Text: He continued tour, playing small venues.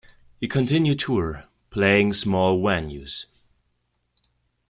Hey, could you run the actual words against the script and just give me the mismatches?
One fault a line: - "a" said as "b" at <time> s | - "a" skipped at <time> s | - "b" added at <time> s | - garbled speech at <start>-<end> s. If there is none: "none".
none